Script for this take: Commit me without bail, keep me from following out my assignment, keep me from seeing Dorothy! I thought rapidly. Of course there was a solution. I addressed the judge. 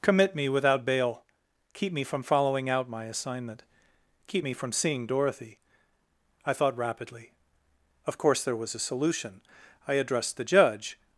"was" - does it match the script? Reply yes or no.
yes